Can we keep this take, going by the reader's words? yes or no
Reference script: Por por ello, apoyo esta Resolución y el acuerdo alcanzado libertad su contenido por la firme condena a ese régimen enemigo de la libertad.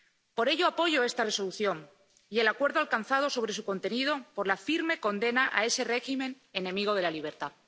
no